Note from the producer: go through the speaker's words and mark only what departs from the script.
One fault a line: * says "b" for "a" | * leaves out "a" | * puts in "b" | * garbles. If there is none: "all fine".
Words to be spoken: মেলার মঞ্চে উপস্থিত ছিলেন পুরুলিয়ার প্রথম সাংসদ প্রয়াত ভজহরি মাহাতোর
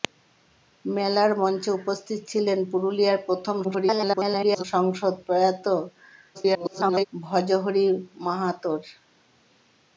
* garbles
* garbles